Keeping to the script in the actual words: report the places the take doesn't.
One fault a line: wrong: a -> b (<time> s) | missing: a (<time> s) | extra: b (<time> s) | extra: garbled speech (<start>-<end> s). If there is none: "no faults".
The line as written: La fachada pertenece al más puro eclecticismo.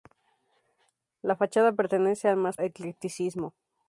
missing: puro (2.6 s)